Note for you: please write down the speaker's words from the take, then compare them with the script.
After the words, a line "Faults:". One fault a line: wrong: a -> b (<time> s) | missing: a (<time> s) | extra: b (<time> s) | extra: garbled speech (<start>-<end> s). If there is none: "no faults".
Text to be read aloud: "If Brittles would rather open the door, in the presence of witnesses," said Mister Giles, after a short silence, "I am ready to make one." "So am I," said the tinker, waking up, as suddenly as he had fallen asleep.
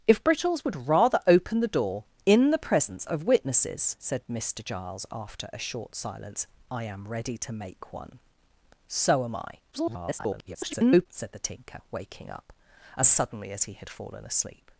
"If Brittles would rather open the door, in the presence of witnesses," said Mister Giles, after a short silence, "I am ready to make one." "So am I," [garbled] said the tinker, waking up, as suddenly as he had fallen asleep.
Faults:
extra: garbled speech (9.7-11.1 s)